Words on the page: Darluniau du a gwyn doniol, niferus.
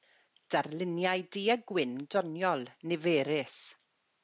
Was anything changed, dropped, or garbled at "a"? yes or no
no